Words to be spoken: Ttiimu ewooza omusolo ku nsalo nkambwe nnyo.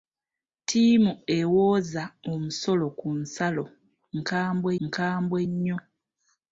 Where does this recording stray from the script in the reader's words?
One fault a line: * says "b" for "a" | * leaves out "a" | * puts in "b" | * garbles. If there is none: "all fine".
* puts in "nkambwe"